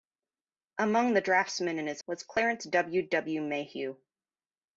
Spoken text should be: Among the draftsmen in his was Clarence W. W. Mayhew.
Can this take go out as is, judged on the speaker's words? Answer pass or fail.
pass